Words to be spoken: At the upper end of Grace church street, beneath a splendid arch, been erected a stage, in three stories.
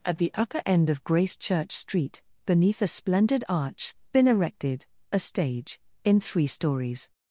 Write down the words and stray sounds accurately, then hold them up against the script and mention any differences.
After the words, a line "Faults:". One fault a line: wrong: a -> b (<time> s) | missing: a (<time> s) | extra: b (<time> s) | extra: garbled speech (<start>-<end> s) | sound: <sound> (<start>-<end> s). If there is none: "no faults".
At the upper end of Grace church street, beneath a splendid arch, been erected a stage, in three stories.
Faults:
no faults